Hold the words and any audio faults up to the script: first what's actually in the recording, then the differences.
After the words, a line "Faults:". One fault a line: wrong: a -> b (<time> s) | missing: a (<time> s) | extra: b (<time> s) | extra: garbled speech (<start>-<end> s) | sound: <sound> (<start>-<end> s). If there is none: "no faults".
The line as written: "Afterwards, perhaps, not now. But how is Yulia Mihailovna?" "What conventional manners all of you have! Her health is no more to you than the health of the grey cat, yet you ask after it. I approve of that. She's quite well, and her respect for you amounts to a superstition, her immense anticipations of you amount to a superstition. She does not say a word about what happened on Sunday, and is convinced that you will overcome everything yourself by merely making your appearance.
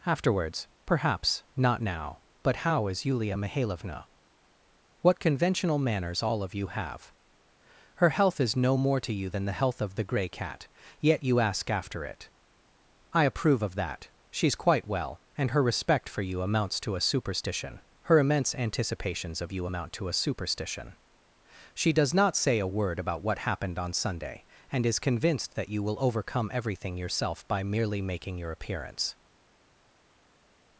"Afterwards, perhaps, not now. But how is Yulia Mihailovna?" "What conventional manners all of you have! Her health is no more to you than the health of the grey cat, yet you ask after it. I approve of that. She's quite well, and her respect for you amounts to a superstition, her immense anticipations of you amount to a superstition. She does not say a word about what happened on Sunday, and is convinced that you will overcome everything yourself by merely making your appearance.
Faults:
no faults